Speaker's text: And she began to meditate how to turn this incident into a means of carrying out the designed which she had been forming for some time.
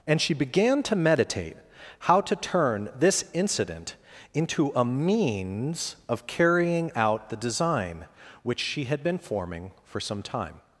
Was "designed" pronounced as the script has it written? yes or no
no